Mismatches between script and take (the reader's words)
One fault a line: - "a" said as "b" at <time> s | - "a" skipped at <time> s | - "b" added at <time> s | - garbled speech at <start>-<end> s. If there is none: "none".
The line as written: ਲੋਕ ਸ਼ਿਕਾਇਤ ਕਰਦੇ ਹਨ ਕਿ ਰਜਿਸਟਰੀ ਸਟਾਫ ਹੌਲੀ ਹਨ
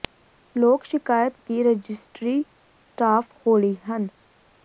- "ਕਰਦੇ ਹਨ" skipped at 1.3 s